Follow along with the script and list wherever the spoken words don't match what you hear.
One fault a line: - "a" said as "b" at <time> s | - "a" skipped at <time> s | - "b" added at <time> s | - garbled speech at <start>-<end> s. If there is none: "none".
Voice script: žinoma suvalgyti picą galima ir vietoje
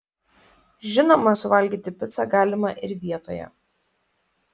none